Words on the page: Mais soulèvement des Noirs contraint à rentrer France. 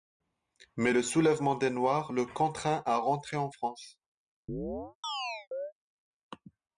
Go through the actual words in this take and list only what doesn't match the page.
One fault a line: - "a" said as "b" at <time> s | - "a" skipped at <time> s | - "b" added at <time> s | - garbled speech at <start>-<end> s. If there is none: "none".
- "le" added at 0.9 s
- "le" added at 2.1 s
- "en" added at 3.4 s